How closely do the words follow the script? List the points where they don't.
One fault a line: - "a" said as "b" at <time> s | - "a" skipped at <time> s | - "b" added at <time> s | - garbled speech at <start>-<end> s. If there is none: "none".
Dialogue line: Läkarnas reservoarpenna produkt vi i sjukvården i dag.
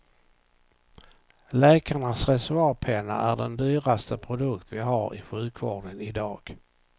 - "är den dyraste" added at 3.2 s
- "har" added at 4.8 s